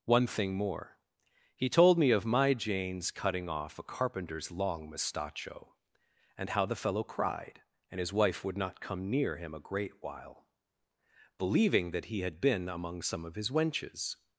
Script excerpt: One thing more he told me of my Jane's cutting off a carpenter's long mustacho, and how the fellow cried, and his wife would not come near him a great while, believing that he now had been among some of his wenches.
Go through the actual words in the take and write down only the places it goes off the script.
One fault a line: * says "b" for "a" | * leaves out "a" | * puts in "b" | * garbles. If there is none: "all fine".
* leaves out "now"